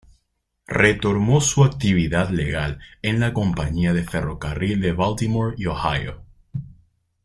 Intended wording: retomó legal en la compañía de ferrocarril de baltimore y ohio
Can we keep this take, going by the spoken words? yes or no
no